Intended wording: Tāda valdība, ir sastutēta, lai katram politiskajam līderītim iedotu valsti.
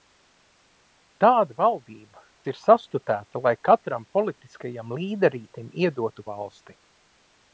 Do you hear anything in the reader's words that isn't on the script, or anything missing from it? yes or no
no